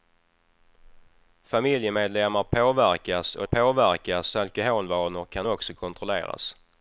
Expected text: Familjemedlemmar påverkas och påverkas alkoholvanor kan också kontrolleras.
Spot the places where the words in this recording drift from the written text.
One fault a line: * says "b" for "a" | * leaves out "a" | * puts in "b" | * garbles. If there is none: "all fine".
all fine